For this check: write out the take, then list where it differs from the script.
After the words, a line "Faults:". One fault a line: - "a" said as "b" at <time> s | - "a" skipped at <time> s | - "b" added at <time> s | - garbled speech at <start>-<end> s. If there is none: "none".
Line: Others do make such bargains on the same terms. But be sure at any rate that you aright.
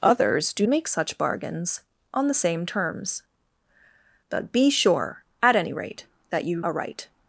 Others do make such bargains on the same terms. But be sure at any rate that you aright.
Faults:
none